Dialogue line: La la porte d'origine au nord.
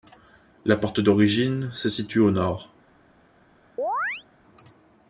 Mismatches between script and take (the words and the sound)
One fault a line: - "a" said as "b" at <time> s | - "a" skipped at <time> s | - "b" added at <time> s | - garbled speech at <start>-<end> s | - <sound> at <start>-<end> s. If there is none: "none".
- "la" skipped at 0.8 s
- "se situe" added at 1.7 s
- chirp at 3.8-4.2 s